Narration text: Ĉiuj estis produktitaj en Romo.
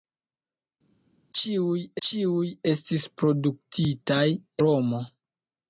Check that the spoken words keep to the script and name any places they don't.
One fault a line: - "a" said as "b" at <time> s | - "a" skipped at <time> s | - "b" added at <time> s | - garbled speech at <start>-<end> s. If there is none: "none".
- "ĉiuj" added at 2.1 s
- "en" skipped at 4.2 s